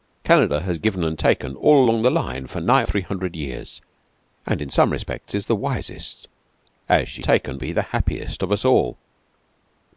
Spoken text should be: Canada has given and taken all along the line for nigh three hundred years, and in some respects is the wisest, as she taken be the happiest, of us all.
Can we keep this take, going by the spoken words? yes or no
yes